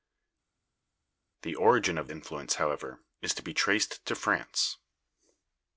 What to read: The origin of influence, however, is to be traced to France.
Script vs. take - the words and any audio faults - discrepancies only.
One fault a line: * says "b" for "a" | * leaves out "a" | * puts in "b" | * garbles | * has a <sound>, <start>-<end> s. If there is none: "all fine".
all fine